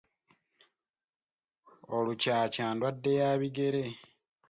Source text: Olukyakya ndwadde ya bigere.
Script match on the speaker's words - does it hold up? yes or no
yes